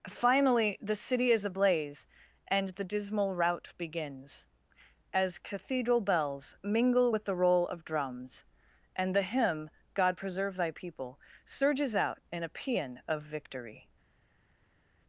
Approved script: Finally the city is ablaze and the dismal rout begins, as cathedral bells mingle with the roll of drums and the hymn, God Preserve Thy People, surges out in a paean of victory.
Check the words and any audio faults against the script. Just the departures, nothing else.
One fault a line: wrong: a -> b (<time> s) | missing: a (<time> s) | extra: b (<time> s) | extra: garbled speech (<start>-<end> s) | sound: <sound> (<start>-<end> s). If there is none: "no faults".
no faults